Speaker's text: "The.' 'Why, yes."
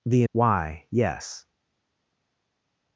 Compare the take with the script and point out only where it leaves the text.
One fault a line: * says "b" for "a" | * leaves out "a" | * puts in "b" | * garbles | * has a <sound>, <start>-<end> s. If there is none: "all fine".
all fine